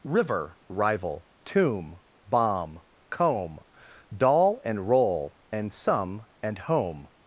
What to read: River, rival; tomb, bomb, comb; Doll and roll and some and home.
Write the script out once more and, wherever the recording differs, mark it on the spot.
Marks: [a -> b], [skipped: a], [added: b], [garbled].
River, rival; tomb, bomb, comb; Doll and roll and some and home.